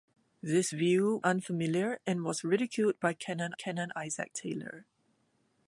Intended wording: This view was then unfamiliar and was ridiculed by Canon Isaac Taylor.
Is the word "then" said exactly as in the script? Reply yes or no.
no